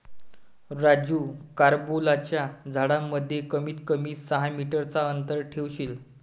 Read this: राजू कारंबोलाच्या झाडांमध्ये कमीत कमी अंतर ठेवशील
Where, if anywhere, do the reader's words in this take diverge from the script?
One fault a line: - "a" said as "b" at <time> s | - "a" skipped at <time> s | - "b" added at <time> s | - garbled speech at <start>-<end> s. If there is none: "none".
- "सहा मीटर चा" added at 4.2 s